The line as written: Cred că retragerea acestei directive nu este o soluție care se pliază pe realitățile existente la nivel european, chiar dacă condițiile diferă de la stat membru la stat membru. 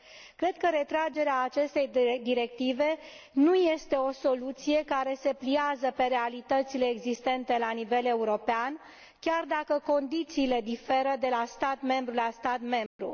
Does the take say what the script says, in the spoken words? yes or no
yes